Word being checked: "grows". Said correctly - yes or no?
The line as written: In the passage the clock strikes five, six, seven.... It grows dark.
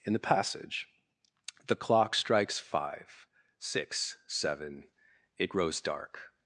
yes